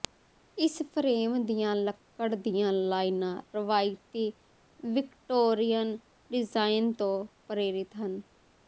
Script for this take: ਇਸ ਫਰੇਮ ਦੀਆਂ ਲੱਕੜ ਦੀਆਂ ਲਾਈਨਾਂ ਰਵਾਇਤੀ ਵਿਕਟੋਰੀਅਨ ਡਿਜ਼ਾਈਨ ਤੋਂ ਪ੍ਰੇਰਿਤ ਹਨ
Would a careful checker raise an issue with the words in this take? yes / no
no